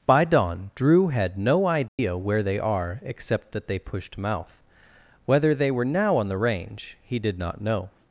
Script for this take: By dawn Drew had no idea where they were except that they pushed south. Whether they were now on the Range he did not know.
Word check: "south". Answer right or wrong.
wrong